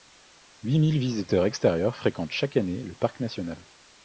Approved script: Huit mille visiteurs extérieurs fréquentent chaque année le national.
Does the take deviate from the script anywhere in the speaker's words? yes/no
yes